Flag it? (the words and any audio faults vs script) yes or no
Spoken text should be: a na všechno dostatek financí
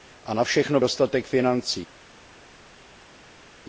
no